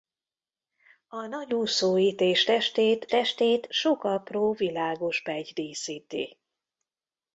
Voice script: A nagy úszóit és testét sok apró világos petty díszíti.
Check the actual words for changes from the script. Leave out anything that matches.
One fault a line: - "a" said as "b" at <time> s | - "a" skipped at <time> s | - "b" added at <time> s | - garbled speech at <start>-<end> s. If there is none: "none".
- "testét" added at 3.1 s